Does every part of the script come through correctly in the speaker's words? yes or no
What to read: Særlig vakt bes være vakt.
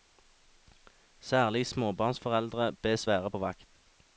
no